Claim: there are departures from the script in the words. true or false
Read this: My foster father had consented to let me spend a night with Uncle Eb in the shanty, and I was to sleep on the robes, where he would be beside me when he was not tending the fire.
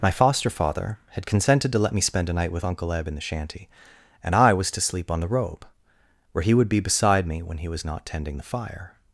true